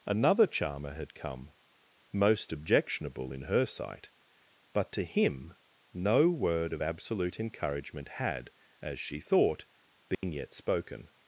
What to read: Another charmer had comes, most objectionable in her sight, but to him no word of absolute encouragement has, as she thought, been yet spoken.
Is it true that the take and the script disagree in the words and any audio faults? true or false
true